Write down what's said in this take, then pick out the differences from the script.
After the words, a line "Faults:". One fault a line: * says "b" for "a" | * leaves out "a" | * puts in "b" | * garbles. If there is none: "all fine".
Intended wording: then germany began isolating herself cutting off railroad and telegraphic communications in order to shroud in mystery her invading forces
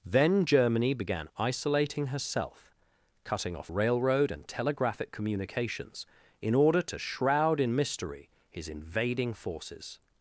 then germany began isolating herself cutting off railroad and telegraphic communications in order to shroud in mystery his invading forces
Faults:
* says "his" for "her"